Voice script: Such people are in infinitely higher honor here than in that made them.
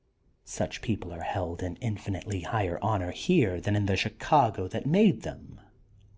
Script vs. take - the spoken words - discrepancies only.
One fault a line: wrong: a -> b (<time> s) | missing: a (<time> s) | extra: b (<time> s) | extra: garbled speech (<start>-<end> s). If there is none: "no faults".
extra: held (1.2 s)
extra: the Chicago (3.8 s)